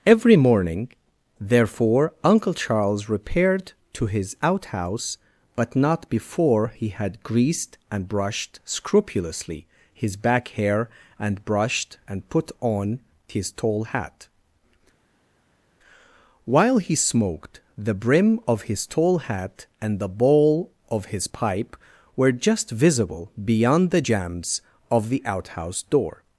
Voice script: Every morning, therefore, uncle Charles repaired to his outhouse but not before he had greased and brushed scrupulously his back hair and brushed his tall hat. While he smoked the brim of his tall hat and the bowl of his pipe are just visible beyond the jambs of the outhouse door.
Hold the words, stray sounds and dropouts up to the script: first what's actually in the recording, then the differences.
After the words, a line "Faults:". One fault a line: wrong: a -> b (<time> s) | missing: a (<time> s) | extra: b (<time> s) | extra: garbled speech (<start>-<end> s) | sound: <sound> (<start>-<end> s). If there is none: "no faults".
Every morning, therefore, uncle Charles repaired to his outhouse but not before he had greased and brushed scrupulously his back hair and brushed and put on his tall hat. While he smoked the brim of his tall hat and the bowl of his pipe were just visible beyond the jambs of the outhouse door.
Faults:
extra: and put on (12.1 s)
wrong: are -> were (22.2 s)